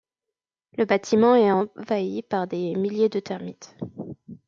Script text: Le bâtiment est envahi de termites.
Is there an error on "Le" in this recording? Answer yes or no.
no